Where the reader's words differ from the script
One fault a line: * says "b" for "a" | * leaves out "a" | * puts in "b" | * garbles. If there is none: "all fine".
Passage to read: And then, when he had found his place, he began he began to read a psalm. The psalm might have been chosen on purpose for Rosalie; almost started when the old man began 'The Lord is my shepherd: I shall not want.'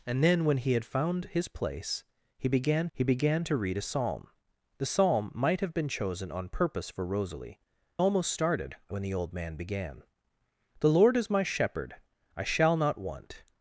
all fine